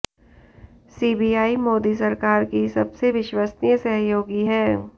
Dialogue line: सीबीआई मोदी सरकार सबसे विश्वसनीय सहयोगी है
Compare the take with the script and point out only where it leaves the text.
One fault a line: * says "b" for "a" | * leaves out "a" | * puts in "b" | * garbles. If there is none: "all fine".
* puts in "की"